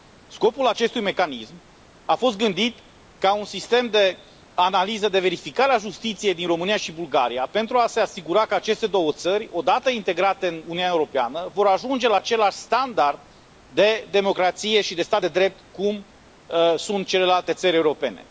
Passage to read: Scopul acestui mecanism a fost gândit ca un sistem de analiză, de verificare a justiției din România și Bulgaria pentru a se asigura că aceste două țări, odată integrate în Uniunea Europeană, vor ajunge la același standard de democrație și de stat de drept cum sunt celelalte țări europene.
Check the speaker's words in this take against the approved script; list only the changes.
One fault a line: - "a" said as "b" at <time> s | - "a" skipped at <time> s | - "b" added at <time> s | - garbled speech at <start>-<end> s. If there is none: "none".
none